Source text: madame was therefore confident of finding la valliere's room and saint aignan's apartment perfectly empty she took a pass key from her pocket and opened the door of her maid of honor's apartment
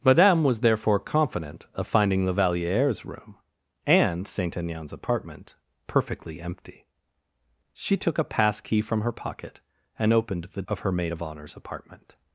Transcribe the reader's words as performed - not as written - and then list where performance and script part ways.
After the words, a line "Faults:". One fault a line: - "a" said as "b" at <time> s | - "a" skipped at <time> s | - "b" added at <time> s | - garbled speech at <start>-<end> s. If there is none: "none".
madame was therefore confident of finding la valliere's room and saint aignan's apartment perfectly empty she took a pass key from her pocket and opened the of her maid of honor's apartment
Faults:
- "door" skipped at 10.6 s